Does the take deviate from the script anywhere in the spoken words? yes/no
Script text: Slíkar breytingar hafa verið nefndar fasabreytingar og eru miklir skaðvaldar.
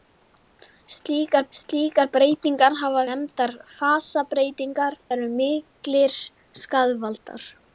yes